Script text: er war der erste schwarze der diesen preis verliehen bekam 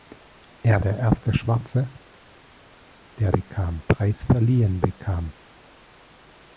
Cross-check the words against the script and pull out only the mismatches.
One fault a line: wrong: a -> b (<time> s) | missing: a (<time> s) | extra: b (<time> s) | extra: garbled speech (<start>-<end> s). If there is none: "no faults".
missing: war (0.8 s)
wrong: diesen -> bekam (3.3 s)